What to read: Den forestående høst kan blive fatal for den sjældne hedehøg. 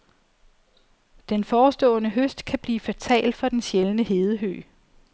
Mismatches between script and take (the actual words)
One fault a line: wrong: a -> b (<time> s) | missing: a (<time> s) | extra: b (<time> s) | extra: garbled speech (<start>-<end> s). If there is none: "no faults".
no faults